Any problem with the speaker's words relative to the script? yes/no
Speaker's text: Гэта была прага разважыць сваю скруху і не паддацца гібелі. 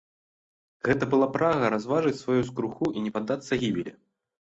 no